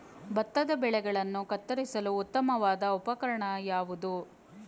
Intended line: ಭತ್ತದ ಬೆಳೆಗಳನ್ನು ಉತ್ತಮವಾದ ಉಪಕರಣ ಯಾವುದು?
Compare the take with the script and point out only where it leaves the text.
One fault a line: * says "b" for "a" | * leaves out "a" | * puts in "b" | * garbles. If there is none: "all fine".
* puts in "ಕತ್ತರಿಸಲು"